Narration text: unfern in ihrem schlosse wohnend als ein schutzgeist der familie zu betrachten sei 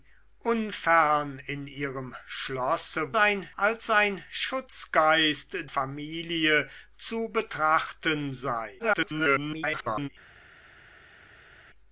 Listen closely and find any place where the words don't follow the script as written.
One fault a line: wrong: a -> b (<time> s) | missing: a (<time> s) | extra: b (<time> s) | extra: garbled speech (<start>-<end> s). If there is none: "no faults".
wrong: wohnend -> ein (3.1 s)
missing: der (5.6 s)
extra: garbled speech (8.8-10.1 s)